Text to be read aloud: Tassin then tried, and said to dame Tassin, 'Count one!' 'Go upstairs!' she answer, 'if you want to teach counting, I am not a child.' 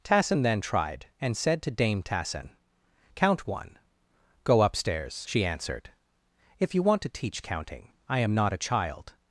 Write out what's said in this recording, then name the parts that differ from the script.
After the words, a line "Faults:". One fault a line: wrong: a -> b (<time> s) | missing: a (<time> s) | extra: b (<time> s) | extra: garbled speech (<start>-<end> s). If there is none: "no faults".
Tassin then tried, and said to dame Tassin, 'Count one!' 'Go upstairs!' she answered, 'if you want to teach counting, I am not a child.'
Faults:
wrong: answer -> answered (5.5 s)